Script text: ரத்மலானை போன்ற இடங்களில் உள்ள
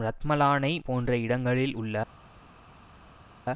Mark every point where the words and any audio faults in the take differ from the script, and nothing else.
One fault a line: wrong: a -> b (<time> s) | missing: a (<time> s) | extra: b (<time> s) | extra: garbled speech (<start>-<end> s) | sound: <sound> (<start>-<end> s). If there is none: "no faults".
no faults